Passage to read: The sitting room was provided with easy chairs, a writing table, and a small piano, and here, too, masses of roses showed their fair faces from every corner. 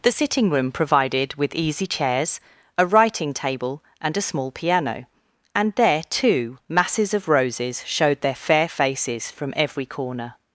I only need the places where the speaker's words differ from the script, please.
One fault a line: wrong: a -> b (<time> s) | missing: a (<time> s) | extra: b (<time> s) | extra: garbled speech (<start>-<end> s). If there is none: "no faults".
missing: was (0.7 s)
wrong: here -> there (5.8 s)